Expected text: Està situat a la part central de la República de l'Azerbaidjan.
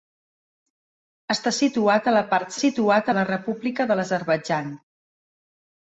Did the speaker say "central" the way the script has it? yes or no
no